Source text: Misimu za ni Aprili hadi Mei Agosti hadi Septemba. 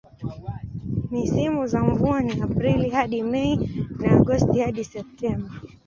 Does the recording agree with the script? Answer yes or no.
no